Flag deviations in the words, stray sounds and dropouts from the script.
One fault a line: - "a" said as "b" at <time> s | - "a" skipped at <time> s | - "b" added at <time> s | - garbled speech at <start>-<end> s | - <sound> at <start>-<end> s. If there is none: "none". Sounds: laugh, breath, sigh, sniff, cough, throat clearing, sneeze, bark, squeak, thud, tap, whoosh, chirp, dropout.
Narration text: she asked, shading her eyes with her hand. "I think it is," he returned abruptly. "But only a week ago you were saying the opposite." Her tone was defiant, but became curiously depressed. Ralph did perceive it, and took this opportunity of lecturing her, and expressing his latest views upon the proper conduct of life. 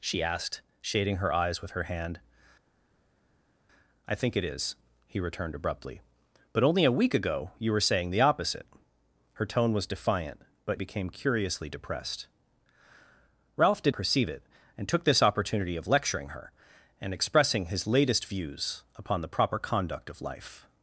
none